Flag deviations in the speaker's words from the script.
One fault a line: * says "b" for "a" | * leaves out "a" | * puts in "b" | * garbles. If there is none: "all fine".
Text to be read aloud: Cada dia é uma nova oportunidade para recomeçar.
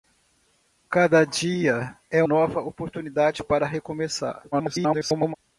* leaves out "uma"
* garbles